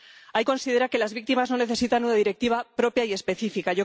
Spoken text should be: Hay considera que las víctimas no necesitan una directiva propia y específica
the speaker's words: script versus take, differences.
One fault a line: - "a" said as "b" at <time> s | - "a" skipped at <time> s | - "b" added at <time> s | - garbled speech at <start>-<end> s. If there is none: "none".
none